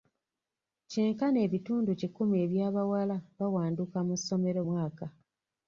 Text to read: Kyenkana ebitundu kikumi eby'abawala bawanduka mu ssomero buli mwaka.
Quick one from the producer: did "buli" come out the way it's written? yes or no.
no